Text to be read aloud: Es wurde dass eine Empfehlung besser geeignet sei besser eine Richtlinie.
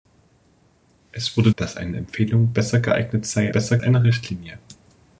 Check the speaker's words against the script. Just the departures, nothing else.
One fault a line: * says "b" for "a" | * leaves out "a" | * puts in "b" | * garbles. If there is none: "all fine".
all fine